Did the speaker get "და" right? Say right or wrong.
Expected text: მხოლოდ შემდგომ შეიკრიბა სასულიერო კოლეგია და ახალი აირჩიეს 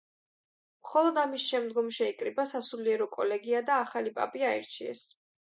right